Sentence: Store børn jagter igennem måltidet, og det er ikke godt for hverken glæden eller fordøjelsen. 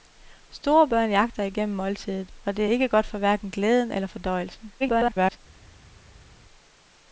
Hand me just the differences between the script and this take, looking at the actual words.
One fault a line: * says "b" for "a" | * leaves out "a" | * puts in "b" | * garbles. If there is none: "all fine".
* garbles